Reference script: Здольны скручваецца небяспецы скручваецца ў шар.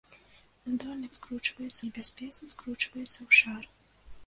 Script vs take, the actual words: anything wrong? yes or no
no